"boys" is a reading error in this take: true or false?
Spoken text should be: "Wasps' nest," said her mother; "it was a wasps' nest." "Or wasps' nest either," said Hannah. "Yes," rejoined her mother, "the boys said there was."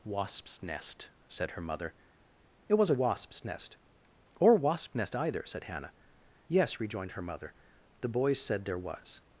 false